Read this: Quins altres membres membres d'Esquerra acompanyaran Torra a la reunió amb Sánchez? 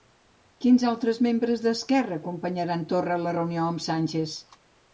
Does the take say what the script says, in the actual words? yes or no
no